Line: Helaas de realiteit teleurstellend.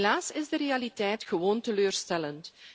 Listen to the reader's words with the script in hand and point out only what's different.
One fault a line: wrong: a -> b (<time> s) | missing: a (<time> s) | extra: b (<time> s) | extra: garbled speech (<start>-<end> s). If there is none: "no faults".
extra: is (0.3 s)
extra: gewoon (1.2 s)